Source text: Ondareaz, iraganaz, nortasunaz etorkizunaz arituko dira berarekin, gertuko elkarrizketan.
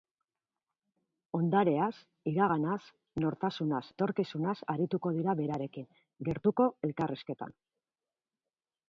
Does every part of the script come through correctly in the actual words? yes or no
yes